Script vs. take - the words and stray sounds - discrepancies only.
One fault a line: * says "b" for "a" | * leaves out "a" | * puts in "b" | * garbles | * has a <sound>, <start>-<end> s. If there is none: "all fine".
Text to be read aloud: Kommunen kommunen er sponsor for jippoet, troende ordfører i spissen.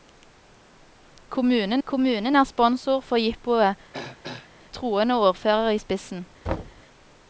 * has a throat clearing, 3.9-4.5 s
* has a thud, 6.5-6.8 s